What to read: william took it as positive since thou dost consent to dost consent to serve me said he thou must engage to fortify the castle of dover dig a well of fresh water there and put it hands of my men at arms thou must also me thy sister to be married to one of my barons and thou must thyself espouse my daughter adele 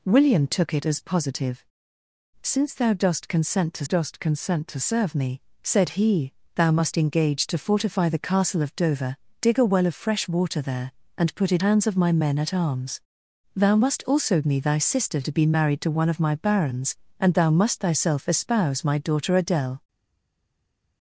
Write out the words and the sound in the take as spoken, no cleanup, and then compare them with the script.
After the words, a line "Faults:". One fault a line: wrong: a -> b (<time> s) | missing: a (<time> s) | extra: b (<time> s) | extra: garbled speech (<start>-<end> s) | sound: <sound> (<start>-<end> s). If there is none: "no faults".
william took it as positive since thou dost consent to dost consent to serve me said he thou must engage to fortify the castle of dover dig a well of fresh water there and put it hands of my men at arms thou must also me thy sister to be married to one of my barons and thou must thyself espouse my daughter adele
Faults:
no faults